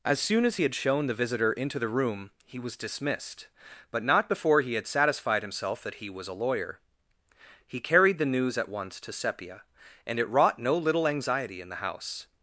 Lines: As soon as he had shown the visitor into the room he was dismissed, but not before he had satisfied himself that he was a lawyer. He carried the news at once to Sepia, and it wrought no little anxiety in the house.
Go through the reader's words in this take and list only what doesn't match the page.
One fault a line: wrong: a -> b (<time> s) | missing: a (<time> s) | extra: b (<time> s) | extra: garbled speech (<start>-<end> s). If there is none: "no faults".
no faults